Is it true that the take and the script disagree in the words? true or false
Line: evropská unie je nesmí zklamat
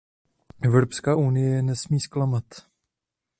false